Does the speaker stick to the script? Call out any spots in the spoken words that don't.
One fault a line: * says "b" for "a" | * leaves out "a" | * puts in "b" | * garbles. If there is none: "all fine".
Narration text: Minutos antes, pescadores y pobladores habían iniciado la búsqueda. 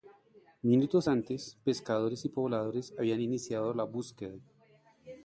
all fine